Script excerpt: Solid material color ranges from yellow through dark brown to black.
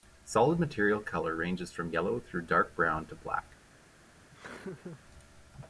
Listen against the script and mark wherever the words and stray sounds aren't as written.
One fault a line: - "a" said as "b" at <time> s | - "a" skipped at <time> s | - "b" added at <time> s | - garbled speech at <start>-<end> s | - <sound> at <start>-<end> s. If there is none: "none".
- laugh at 4.3-5.0 s